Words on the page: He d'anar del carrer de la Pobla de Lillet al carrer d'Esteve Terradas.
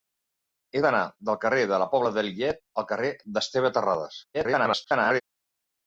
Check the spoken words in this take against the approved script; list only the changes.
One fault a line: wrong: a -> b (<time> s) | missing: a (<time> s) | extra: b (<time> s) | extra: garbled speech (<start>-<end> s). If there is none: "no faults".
extra: garbled speech (4.3-5.2 s)